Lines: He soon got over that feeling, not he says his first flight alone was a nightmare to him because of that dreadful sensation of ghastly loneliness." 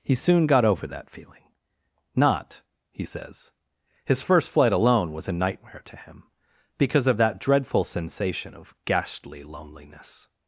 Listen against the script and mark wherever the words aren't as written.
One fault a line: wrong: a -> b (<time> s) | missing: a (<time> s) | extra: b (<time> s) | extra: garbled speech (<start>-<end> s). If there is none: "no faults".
no faults